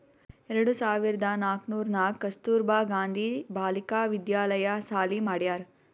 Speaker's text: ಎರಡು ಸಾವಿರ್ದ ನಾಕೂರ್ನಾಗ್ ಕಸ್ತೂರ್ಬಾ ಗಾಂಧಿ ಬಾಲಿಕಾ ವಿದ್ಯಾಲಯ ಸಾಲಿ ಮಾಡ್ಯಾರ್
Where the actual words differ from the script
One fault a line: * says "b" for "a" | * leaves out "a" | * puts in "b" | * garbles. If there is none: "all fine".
all fine